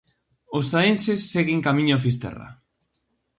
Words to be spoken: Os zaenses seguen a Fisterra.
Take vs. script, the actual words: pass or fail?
fail